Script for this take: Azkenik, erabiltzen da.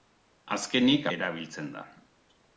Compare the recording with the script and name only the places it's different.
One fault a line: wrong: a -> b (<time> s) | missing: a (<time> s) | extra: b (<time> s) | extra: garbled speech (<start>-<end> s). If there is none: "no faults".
no faults